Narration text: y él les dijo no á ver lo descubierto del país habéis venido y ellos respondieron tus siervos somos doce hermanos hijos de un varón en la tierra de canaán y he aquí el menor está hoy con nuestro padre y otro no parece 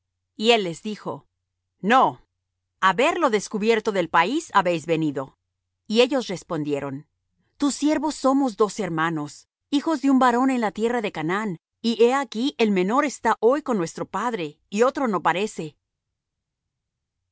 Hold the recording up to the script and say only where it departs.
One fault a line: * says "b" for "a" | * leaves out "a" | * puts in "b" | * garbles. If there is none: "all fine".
all fine